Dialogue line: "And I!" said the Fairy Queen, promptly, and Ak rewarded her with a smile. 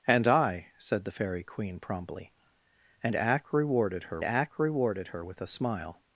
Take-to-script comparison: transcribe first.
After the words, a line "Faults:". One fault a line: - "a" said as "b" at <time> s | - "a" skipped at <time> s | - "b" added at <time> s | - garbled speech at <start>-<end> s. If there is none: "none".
"And I!" said the Fairy Queen, promptly, and Ak rewarded her Ak rewarded her with a smile.
Faults:
- "Ak rewarded her" added at 4.2 s